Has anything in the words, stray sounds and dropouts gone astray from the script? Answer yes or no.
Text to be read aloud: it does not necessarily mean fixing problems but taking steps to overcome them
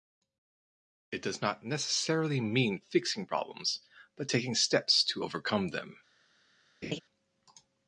yes